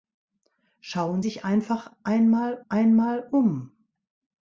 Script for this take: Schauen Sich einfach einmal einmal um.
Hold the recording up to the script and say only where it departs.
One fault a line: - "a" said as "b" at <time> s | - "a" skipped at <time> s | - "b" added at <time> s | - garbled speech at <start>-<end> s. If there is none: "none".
none